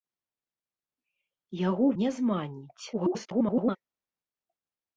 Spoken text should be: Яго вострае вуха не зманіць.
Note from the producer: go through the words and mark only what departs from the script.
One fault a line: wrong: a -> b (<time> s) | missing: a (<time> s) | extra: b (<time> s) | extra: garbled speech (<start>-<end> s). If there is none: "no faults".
missing: вострае вуха (1.9 s)
extra: garbled speech (2.9-3.8 s)